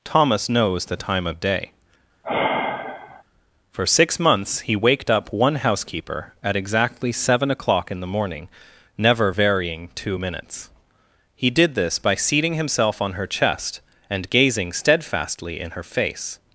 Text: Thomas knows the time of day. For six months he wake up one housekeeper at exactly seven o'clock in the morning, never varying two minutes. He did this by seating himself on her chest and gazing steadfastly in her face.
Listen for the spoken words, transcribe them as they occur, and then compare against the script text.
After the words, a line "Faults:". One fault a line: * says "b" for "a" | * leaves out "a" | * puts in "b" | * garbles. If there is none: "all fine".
Thomas knows the time of day. For six months he waked up one housekeeper at exactly seven o'clock in the morning, never varying two minutes. He did this by seating himself on her chest and gazing steadfastly in her face.
Faults:
* says "waked" for "wake"